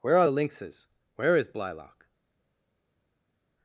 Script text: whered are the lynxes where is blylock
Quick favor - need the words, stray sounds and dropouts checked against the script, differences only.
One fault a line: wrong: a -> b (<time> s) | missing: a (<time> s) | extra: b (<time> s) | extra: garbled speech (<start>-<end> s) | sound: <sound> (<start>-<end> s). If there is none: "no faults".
wrong: whered -> where (0.0 s)